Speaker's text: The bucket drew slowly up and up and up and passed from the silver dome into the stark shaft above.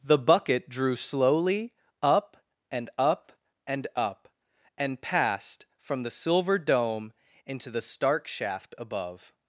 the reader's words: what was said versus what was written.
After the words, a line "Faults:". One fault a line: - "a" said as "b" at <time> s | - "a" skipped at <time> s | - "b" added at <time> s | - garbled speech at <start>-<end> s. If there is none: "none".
The bucket drew slowly up and up and up and passed from the silver dome into the stark shaft above.
Faults:
none